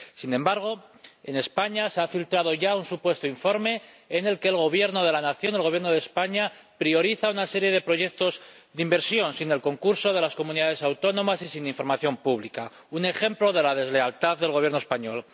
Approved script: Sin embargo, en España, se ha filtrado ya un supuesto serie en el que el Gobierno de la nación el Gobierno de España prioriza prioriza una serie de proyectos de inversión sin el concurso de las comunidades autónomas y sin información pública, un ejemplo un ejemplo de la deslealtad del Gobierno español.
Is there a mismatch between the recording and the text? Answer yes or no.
yes